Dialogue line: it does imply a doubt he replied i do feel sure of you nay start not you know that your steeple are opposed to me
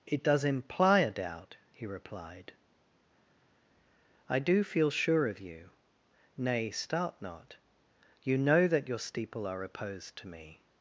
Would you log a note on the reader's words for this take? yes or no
no